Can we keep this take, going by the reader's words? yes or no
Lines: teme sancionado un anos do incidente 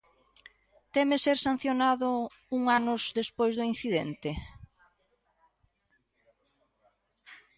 no